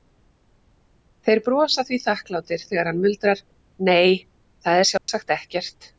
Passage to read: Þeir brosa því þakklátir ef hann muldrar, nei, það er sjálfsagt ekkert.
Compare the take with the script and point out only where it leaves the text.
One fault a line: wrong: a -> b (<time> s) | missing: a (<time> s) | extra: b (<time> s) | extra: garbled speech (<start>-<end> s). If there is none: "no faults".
wrong: ef -> þegar (2.7 s)